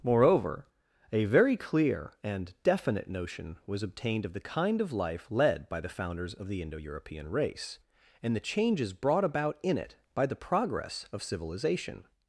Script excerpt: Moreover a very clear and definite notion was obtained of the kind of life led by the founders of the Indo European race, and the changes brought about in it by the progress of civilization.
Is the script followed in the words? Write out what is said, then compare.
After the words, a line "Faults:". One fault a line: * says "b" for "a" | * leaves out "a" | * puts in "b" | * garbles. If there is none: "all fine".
Moreover a very clear and definite notion was obtained of the kind of life led by the founders of the Indo European race, and the changes brought about in it by the progress of civilization.
Faults:
all fine